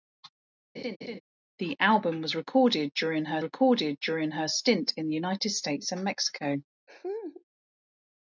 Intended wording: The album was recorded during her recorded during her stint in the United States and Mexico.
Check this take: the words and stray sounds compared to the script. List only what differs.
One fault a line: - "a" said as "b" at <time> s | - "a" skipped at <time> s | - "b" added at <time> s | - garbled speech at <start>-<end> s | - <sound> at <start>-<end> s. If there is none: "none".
- laugh at 0.7-1.2 s
- laugh at 6.9-7.4 s